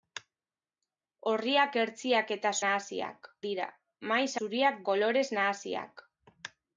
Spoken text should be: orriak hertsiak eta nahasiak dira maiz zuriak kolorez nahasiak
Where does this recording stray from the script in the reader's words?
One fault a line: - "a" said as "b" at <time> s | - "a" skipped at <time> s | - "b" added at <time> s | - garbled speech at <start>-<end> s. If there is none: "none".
none